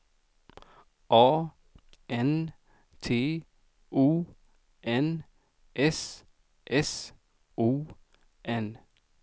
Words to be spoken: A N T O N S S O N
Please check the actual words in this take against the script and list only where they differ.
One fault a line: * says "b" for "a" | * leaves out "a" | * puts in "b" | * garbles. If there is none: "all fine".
all fine